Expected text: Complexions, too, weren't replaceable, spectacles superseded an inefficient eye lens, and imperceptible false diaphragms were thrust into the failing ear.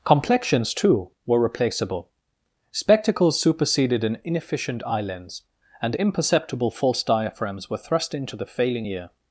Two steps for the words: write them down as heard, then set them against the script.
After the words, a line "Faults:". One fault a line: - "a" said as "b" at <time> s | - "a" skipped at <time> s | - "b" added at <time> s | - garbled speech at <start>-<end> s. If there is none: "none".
Complexions, too, were replaceable, spectacles superseded an inefficient eye lens, and imperceptible false diaphragms were thrust into the failing ear.
Faults:
- "weren't" said as "were" at 1.3 s